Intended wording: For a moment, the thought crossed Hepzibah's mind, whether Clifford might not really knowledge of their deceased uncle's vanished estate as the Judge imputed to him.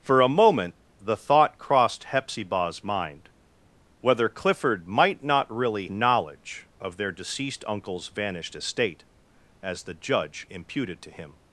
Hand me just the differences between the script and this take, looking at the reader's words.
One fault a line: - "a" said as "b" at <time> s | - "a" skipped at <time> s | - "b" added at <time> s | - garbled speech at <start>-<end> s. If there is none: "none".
none